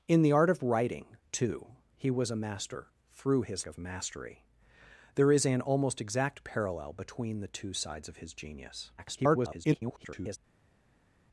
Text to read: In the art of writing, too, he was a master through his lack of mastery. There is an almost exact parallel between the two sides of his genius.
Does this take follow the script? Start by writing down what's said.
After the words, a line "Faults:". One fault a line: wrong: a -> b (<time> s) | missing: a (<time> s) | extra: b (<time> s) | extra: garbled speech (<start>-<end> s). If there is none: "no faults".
In the art of writing, too, he was a master through his of mastery. There is an almost exact parallel between the two sides of his genius. [garbled]
Faults:
missing: lack (3.6 s)
extra: garbled speech (9.0-10.4 s)